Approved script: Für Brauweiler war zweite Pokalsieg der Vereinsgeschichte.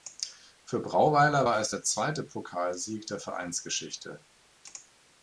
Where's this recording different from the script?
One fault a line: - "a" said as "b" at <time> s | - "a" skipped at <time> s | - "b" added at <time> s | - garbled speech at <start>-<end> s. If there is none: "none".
- "es der" added at 1.6 s